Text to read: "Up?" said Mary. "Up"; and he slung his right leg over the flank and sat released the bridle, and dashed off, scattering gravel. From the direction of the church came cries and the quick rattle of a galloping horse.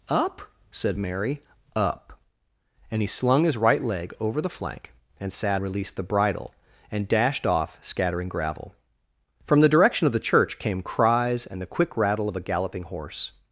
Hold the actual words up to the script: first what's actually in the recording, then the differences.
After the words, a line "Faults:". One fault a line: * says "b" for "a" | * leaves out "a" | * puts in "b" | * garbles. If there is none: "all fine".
"Up?" said Mary. "Up"; and he slung his right leg over the flank and sat released the bridle, and dashed off, scattering gravel. From the direction of the church came cries and the quick rattle of a galloping horse.
Faults:
all fine